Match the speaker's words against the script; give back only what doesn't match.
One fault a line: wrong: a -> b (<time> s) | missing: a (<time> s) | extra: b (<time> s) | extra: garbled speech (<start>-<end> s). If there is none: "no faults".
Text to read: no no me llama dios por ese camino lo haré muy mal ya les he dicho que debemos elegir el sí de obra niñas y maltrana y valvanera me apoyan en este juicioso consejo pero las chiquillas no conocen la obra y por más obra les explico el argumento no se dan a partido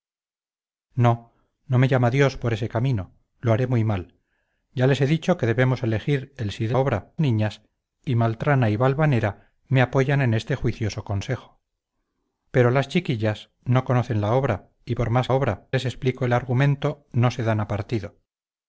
no faults